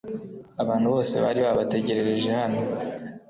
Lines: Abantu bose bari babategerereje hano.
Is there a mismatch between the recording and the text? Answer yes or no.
no